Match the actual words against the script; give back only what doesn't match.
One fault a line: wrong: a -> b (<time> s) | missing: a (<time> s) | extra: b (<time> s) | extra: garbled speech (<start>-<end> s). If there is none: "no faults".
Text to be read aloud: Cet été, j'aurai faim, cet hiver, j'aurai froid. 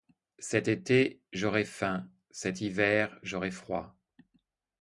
no faults